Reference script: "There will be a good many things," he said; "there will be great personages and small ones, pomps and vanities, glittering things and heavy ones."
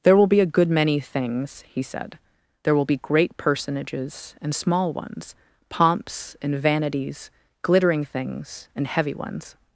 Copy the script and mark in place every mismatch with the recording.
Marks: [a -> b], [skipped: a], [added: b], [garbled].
"There will be a good many things," he said; "there will be great personages and small ones, pomps and vanities, glittering things and heavy ones."